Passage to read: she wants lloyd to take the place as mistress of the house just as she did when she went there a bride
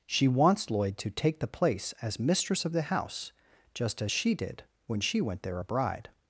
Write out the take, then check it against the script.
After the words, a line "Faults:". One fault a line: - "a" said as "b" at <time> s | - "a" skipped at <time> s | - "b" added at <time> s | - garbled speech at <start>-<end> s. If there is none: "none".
she wants lloyd to take the place as mistress of the house just as she did when she went there a bride
Faults:
none